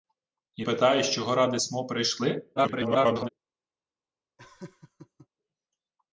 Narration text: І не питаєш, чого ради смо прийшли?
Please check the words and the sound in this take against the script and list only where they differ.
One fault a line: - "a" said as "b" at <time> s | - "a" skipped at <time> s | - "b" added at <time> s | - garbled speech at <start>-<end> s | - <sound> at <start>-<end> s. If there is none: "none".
- "не" skipped at 0.7 s
- garbled speech at 2.6-3.3 s
- laugh at 4.4-5.3 s